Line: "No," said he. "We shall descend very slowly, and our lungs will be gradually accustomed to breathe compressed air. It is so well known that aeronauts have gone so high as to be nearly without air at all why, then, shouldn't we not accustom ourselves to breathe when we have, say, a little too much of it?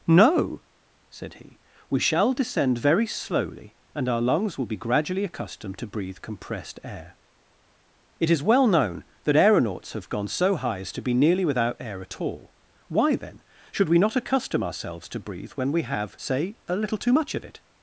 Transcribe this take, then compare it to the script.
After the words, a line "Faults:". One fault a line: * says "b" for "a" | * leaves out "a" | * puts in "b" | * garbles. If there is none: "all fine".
"No," said he. "We shall descend very slowly, and our lungs will be gradually accustomed to breathe compressed air. It is well known that aeronauts have gone so high as to be nearly without air at all why, then, should we not accustom ourselves to breathe when we have, say, a little too much of it?
Faults:
* leaves out "so"
* says "should" for "shouldn't"